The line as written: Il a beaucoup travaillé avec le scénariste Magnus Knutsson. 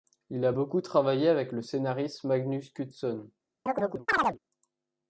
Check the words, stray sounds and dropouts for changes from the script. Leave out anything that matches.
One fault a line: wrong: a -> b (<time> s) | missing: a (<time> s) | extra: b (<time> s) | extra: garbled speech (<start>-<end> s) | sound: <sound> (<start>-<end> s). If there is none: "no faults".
sound: chirp (3.7-4.4 s)